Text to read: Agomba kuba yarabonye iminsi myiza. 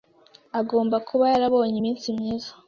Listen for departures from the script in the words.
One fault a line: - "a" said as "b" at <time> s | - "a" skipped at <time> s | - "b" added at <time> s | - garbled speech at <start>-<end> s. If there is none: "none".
none